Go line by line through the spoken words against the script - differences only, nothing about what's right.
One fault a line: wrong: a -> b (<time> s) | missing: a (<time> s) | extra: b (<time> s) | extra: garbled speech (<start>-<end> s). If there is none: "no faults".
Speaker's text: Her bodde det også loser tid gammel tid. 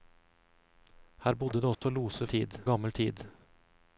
no faults